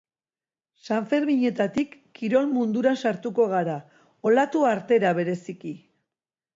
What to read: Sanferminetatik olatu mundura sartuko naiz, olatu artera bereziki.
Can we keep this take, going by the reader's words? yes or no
no